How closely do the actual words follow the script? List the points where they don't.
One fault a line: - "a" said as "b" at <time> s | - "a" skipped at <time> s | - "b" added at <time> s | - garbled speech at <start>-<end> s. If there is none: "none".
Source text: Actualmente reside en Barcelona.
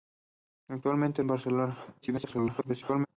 - "reside" skipped at 1.2 s
- garbled speech at 2.0-3.1 s